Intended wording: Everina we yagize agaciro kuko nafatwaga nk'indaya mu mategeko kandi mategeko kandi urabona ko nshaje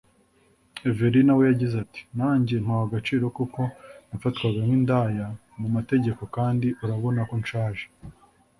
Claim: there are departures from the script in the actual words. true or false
true